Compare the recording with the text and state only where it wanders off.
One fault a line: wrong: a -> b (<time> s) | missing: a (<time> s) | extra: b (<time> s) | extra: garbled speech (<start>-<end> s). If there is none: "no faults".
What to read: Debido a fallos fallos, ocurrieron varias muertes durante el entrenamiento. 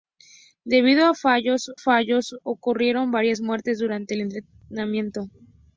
no faults